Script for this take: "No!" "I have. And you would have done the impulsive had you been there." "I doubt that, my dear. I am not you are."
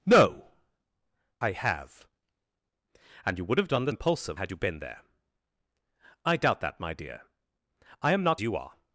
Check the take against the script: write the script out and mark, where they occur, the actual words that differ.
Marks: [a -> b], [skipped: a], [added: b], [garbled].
"No!" "I have. And you would have done the impulsive had you been there." "I doubt that, my dear. I am not you are."